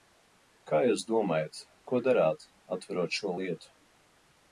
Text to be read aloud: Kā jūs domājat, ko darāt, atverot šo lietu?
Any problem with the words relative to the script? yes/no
no